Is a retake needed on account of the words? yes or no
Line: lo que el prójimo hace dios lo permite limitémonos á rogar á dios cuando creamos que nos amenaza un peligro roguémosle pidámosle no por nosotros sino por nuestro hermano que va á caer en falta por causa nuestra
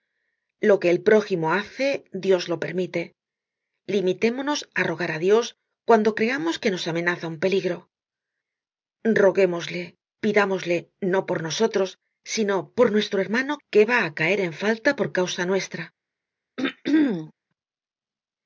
no